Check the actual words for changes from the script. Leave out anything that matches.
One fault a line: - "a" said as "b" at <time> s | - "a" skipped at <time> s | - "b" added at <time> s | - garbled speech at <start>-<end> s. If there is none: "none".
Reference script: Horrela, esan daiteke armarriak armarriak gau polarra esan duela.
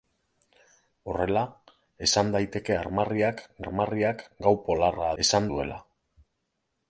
none